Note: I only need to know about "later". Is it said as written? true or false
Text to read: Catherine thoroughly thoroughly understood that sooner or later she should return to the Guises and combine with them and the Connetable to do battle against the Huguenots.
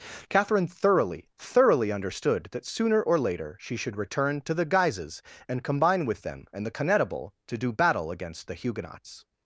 true